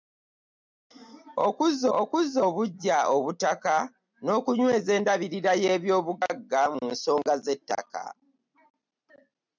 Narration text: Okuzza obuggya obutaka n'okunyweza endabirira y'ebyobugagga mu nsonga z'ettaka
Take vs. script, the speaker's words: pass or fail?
fail